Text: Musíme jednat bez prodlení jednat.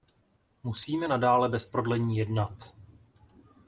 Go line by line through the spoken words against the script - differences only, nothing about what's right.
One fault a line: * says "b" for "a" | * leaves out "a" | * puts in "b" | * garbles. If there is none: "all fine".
* says "nadále" for "jednat"